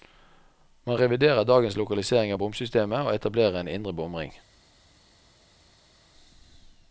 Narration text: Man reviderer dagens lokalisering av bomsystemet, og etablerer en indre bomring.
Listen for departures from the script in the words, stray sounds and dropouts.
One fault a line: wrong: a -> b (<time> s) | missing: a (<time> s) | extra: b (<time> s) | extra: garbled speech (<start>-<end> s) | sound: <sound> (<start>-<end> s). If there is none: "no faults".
no faults